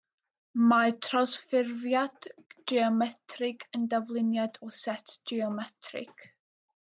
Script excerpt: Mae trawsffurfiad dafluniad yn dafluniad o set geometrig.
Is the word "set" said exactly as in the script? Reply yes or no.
yes